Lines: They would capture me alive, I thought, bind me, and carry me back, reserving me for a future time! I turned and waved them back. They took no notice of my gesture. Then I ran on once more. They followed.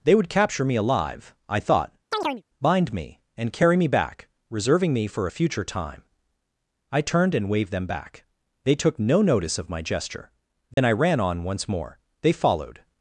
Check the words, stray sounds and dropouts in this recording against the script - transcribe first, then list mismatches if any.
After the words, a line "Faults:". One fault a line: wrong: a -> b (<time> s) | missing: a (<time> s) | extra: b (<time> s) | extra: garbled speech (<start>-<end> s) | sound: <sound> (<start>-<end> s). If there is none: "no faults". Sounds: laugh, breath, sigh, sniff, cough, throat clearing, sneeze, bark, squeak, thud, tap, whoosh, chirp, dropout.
They would capture me alive, I thought, bind me, and carry me back, reserving me for a future time! I turned and waved them back. They took no notice of my gesture. Then I ran on once more. They followed.
Faults:
sound: chirp (2.1-2.4 s)
sound: dropout (10.7-10.8 s)